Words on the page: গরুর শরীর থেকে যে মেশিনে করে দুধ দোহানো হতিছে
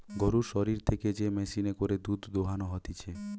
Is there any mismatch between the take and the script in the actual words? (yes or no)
no